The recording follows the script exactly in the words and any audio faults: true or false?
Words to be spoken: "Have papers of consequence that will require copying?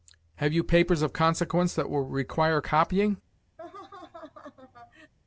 false